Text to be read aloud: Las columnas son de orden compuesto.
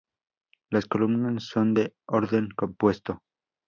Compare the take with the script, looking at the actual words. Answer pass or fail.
pass